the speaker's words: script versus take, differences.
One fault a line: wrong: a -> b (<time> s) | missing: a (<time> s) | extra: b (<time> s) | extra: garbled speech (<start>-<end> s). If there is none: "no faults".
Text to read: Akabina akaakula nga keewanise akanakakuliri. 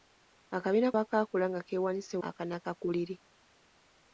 no faults